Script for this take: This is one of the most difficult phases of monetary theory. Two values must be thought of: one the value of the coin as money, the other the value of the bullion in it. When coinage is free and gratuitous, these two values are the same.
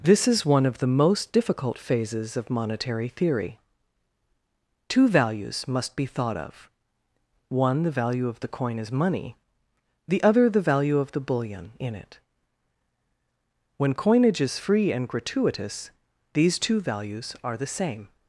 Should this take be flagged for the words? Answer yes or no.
no